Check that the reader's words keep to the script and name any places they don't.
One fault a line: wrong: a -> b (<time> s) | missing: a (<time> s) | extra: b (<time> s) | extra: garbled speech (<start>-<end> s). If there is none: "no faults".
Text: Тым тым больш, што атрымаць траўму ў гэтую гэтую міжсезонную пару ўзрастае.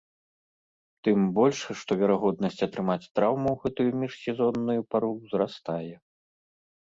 missing: тым (1.2 s)
extra: верагоднасць (2.0 s)
missing: гэтую (3.9 s)